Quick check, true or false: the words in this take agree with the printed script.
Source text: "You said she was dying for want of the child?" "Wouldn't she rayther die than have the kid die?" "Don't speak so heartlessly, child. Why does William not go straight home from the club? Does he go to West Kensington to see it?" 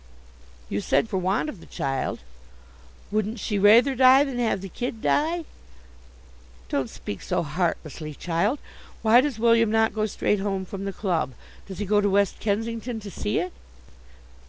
false